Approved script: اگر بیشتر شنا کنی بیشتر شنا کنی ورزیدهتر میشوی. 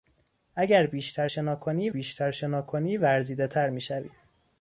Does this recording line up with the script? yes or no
yes